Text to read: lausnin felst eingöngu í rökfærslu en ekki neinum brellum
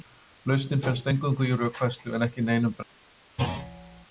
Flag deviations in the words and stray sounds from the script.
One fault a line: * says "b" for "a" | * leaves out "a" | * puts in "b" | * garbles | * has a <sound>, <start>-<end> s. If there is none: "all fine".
* has a thud, 3.4-4.1 s